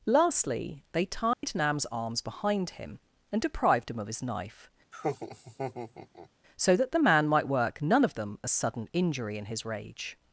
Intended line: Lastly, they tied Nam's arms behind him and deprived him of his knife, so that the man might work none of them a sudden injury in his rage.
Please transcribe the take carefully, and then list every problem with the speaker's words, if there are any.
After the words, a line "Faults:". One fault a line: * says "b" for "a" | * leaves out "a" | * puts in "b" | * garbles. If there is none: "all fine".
Lastly, they tied Nam's arms behind him and deprived him of his knife, so that the man might work none of them a sudden injury in his rage.
Faults:
all fine